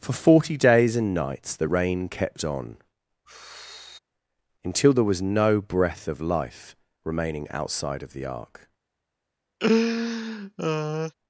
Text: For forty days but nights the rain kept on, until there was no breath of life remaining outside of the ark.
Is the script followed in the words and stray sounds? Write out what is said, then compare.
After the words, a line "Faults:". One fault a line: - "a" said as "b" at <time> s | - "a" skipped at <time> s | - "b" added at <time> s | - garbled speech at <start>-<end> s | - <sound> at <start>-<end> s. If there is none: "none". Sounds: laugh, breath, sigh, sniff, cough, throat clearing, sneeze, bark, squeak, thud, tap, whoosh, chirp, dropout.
For forty days and nights the rain kept on, until there was no breath of life remaining outside of the ark.
Faults:
- "but" said as "and" at 1.0 s
- sigh at 3.3-4.0 s
- laugh at 9.6-11.1 s